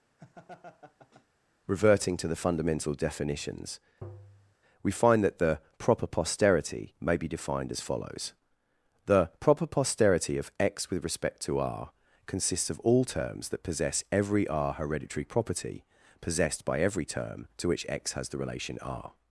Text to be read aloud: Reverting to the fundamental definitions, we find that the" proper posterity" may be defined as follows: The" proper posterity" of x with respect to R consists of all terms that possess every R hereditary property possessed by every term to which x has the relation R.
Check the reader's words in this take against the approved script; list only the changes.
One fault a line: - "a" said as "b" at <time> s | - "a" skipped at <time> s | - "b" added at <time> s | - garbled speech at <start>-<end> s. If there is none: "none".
none